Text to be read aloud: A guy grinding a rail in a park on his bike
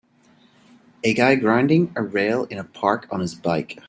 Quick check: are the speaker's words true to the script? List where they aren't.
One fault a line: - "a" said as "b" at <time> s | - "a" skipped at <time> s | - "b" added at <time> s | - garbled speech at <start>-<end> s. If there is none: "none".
none